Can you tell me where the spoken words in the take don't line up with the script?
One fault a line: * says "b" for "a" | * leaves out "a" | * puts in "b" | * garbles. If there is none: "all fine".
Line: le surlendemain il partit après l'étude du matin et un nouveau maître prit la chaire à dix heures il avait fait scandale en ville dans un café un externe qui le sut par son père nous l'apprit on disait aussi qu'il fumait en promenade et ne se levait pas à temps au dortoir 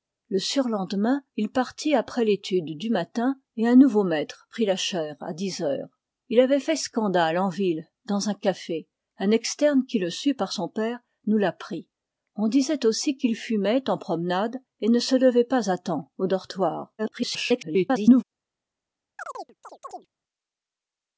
* garbles